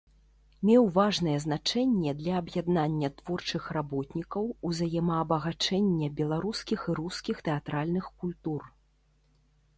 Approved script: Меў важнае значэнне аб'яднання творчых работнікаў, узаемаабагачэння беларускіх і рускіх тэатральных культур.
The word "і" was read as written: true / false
true